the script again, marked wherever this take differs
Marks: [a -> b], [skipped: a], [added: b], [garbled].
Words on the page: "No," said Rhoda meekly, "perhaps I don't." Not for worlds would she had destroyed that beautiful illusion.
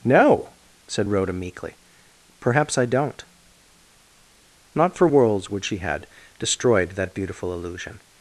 "No," said Rhoda meekly, "perhaps I don't." Not for worlds would she had destroyed that beautiful illusion.